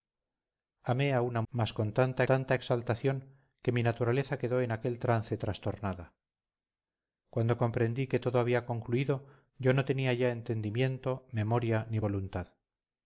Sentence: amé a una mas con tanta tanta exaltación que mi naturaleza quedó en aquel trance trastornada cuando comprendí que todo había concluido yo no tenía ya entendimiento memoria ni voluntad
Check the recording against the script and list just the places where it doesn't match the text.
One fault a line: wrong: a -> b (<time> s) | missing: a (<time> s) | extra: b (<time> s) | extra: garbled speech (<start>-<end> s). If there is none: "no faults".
no faults